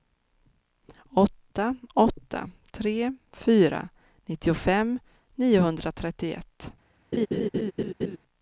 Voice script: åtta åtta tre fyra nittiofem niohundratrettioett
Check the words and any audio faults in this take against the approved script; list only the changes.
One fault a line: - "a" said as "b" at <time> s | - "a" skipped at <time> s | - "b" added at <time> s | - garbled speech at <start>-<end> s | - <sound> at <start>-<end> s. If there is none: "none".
- laugh at 7.1-8.2 s